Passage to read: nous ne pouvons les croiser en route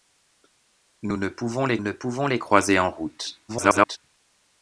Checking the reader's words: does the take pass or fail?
fail